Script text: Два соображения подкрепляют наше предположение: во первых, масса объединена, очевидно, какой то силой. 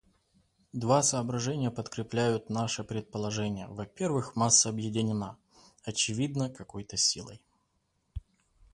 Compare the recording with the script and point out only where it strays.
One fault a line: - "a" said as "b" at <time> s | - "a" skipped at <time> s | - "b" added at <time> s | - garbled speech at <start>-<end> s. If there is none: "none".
none